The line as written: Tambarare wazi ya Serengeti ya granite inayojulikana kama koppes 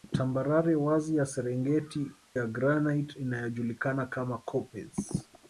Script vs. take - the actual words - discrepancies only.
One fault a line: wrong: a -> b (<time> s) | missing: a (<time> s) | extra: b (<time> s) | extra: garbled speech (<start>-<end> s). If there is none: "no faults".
no faults